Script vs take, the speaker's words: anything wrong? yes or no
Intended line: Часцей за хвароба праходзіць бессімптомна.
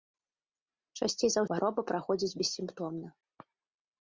no